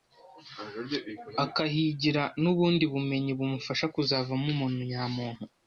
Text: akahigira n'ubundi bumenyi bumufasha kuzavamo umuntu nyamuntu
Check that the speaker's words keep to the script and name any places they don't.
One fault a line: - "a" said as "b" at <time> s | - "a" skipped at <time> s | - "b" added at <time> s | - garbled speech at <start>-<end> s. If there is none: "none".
none